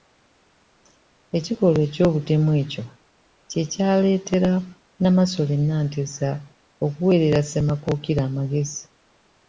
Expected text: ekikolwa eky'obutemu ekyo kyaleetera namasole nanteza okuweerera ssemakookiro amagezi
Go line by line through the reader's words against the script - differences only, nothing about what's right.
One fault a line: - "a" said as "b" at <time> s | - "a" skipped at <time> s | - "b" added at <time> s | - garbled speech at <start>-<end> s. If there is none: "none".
- "kye" added at 3.5 s